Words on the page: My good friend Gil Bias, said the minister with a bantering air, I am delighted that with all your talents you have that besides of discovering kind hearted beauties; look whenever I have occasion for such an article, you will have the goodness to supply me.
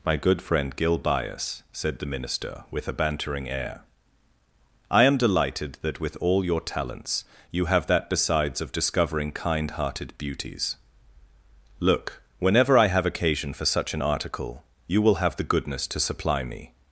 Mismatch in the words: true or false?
false